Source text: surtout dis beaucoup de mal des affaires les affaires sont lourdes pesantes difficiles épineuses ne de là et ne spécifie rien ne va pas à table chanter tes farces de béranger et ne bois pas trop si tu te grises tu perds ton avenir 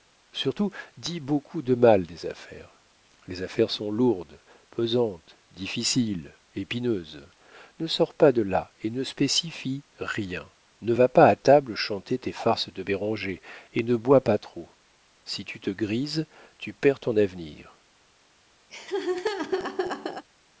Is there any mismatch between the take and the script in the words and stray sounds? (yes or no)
yes